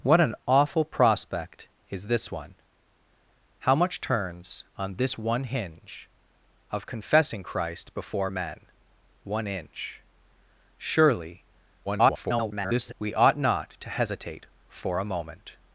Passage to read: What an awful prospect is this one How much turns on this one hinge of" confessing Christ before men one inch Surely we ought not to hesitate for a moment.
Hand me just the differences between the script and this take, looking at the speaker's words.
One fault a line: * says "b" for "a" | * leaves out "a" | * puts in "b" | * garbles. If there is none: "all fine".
* garbles